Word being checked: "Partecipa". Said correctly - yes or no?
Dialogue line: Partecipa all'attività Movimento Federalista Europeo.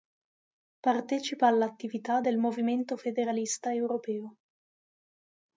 yes